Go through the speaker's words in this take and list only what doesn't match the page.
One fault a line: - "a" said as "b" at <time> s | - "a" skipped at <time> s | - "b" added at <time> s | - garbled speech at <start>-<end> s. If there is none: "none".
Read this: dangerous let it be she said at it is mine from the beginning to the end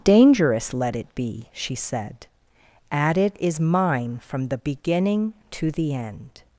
none